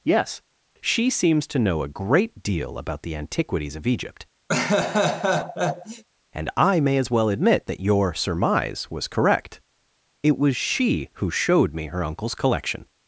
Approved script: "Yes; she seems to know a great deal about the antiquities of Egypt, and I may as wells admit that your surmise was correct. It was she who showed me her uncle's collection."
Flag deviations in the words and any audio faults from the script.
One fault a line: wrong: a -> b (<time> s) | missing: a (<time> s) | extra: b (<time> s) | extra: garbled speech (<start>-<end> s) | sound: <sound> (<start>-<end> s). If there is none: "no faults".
sound: laugh (4.5-6.0 s)
wrong: wells -> well (7.1 s)